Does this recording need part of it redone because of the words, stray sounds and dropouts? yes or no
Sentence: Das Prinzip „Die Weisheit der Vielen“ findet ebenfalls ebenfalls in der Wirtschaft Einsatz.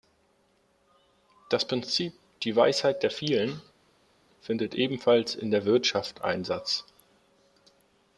yes